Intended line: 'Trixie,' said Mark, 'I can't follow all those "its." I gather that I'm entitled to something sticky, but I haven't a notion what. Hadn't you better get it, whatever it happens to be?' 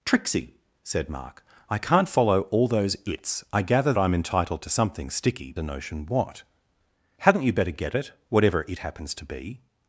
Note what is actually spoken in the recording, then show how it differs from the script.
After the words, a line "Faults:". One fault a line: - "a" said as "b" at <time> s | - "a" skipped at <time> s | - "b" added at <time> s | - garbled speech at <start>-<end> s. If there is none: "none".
'Trixie,' said Mark, 'I can't follow all those "its." I gather I'm entitled to something sticky, a notion what. Hadn't you better get it, whatever it happens to be?'
Faults:
- "that" skipped at 3.9 s
- "but I haven't" skipped at 5.5 s